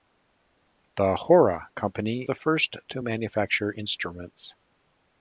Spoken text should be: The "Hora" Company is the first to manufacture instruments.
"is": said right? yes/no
no